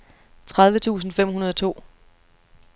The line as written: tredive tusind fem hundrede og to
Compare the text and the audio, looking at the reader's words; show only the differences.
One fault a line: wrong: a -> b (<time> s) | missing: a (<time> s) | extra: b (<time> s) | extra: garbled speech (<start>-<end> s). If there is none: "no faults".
no faults